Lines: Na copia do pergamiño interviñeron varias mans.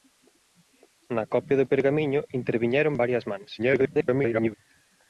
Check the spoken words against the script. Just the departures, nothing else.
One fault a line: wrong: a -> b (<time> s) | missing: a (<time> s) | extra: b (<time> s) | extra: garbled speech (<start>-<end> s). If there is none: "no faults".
extra: garbled speech (3.6-4.5 s)